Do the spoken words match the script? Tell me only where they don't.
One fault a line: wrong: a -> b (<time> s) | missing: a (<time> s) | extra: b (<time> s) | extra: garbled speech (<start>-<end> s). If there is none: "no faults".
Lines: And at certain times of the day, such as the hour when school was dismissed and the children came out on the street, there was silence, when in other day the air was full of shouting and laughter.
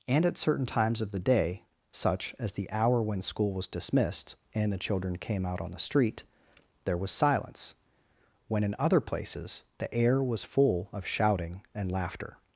wrong: day -> places (9.0 s)